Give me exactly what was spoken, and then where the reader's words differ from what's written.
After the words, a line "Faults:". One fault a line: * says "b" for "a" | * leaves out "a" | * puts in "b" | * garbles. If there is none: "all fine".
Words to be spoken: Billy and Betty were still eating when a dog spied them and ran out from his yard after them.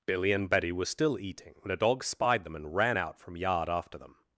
Billy and Betty were still eating when a dog spied them and ran out from yard after them.
Faults:
* leaves out "his"